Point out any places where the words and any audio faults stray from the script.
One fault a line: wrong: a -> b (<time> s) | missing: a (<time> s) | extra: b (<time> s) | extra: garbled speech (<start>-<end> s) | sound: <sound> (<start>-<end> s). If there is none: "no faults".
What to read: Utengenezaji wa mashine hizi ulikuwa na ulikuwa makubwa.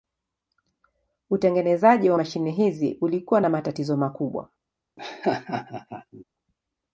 wrong: ulikuwa -> matatizo (3.5 s)
sound: laugh (5.0-6.2 s)